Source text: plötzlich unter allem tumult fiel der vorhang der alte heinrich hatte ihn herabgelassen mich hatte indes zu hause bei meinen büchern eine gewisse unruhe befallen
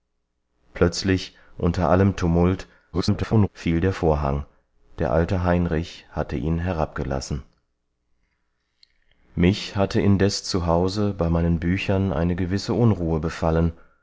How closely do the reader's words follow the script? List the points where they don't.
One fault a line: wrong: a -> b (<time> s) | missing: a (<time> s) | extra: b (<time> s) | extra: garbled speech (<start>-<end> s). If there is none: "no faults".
extra: garbled speech (2.9-3.5 s)